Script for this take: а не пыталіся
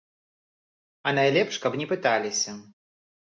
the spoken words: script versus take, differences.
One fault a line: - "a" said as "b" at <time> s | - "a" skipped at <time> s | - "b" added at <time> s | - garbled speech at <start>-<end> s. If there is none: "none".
- "найлепш каб" added at 1.2 s